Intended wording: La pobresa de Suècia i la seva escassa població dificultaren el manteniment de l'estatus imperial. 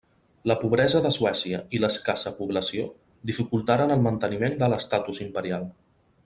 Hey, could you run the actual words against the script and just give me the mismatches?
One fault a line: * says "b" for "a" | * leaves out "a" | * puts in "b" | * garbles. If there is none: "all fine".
* leaves out "seva"